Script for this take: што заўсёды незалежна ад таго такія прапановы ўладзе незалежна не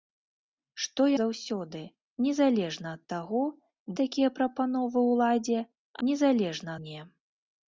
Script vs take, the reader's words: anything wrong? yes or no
no